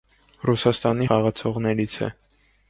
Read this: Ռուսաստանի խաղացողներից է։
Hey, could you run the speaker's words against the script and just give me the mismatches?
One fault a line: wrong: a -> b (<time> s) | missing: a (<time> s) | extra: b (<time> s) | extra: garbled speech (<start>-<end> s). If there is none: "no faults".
no faults